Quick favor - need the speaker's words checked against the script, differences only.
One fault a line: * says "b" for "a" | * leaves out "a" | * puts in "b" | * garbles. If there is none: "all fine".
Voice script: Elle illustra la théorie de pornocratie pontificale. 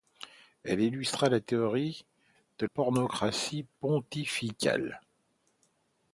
all fine